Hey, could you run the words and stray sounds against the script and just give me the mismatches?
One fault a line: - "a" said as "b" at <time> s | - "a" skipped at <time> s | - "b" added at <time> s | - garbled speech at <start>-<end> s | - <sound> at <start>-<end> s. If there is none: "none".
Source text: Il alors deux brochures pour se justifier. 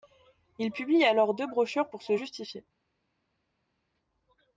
- "publie" added at 0.7 s